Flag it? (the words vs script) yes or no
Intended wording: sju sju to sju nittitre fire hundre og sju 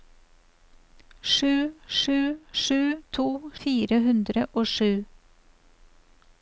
yes